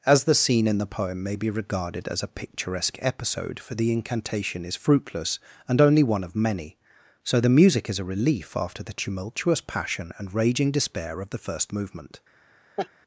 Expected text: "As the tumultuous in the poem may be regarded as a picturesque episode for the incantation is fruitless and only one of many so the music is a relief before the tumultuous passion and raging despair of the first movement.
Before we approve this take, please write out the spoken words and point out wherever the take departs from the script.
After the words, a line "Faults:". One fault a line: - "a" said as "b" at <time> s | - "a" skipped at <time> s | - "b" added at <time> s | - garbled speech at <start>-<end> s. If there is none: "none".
"As the scene in the poem may be regarded as a picturesque episode for the incantation is fruitless and only one of many so the music is a relief after the tumultuous passion and raging despair of the first movement.
Faults:
- "tumultuous" said as "scene" at 0.3 s
- "before" said as "after" at 8.6 s